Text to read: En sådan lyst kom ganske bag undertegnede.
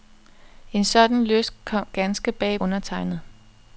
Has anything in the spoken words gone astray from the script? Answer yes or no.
no